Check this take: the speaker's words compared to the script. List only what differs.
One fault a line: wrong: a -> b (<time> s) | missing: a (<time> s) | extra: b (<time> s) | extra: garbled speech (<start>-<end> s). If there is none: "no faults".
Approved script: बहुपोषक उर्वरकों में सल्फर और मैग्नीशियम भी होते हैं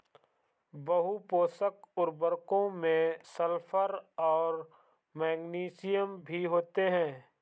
no faults